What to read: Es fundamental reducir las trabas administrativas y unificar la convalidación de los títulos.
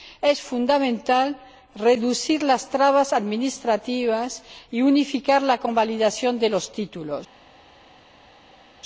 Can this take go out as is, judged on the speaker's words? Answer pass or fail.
pass